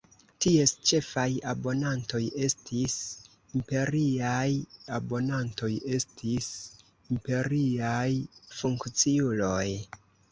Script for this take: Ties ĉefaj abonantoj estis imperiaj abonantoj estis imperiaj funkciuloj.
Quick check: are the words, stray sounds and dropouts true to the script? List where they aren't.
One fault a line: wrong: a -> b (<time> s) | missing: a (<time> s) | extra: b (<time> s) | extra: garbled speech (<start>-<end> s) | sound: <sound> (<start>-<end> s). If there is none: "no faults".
no faults